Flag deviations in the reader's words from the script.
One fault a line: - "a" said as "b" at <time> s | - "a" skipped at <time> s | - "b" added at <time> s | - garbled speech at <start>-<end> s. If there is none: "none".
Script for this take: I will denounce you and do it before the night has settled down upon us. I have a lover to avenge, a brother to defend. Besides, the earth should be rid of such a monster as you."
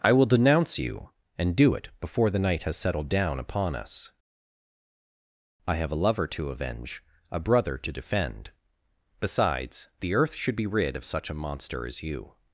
none